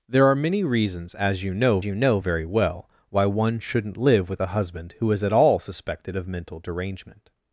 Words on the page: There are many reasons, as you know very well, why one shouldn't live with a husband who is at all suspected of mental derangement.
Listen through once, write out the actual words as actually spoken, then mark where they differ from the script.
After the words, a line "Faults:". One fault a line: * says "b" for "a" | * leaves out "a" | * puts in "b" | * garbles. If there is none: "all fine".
There are many reasons, as you know you know very well, why one shouldn't live with a husband who is at all suspected of mental derangement.
Faults:
* puts in "you know"